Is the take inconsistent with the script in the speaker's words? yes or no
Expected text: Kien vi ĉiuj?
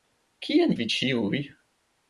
no